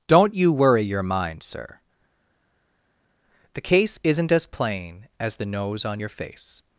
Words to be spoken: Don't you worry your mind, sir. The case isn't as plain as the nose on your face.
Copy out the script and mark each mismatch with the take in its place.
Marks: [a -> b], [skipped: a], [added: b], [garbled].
Don't you worry your mind, sir. The case isn't as plain as the nose on your face.